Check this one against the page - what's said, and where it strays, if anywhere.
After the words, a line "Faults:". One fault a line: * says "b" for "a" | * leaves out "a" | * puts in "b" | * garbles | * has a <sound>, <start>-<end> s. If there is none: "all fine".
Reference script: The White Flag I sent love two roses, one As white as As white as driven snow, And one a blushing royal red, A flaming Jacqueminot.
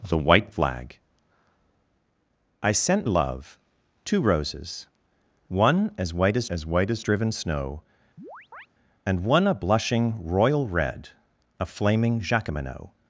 The White Flag I sent love two roses, one As white as As white as driven snow, And one a blushing royal red, A flaming Jacqueminot.
Faults:
* has a chirp, 8.2-8.7 s